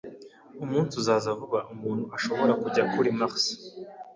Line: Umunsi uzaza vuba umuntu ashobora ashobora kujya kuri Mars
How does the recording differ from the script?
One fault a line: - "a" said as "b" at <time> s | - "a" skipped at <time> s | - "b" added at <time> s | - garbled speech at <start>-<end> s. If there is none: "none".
- "ashobora" skipped at 2.5 s